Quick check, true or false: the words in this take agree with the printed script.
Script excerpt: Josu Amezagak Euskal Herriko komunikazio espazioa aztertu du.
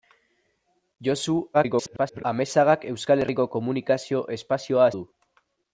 false